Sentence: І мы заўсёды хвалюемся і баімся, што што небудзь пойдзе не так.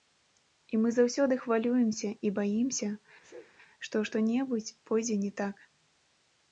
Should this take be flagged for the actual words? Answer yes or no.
no